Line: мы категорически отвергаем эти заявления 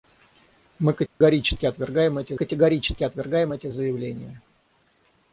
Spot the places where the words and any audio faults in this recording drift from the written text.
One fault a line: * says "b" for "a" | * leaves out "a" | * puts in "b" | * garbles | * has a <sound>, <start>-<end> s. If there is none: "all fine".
* has a dropout, 1.1-1.2 s
* puts in "категорически отвергаем эти"